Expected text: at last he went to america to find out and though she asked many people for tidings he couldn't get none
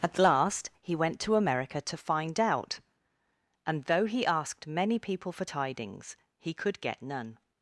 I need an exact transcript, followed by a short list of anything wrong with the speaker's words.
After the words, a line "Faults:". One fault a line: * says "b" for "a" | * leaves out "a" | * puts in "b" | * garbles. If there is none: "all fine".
at last he went to america to find out and though he asked many people for tidings he could get none
Faults:
* says "he" for "she"
* says "could" for "couldn't"